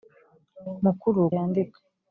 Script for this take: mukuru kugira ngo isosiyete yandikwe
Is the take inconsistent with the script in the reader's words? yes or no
yes